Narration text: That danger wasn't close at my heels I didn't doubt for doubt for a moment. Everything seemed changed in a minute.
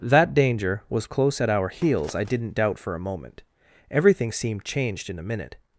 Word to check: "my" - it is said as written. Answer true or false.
false